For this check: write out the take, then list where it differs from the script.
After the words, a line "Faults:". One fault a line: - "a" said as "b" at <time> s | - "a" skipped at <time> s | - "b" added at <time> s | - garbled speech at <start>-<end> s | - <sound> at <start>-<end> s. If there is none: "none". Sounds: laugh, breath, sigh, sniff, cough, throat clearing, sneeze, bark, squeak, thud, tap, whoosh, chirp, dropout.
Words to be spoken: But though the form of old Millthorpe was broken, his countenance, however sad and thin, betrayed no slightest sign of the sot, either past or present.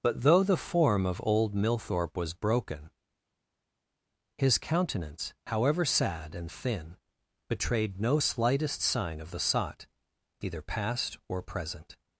But though the form of old Millthorpe was broken, his countenance, however sad and thin, betrayed no slightest sign of the sot, either past or present.
Faults:
none